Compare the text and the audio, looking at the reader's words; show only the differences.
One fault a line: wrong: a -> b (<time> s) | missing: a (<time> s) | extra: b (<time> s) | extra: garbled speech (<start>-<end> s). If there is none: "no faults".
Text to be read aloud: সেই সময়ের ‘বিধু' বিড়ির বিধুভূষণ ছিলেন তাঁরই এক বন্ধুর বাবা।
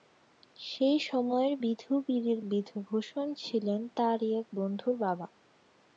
no faults